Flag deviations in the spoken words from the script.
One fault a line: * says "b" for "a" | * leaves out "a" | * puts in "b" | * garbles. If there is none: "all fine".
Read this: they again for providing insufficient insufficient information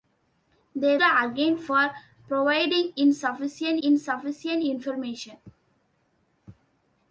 all fine